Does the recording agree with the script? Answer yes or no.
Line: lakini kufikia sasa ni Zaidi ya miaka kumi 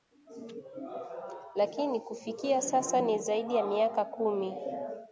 yes